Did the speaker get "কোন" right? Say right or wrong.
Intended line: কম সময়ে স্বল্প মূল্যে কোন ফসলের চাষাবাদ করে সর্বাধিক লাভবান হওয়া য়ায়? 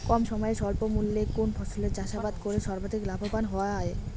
right